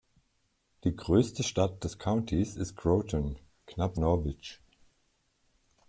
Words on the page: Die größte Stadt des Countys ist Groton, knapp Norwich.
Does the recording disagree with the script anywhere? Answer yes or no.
no